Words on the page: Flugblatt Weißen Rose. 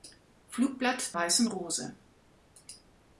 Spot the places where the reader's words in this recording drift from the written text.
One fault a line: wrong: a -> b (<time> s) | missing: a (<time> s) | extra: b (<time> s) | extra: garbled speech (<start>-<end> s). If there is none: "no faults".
no faults